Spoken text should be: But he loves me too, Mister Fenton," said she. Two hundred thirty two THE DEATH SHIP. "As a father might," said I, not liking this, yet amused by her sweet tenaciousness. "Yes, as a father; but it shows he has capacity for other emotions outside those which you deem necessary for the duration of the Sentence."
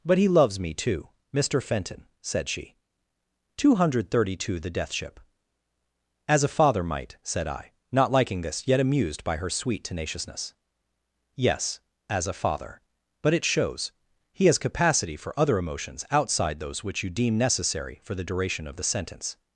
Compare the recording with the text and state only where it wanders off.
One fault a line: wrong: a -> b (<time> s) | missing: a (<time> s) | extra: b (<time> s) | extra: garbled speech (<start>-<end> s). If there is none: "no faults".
no faults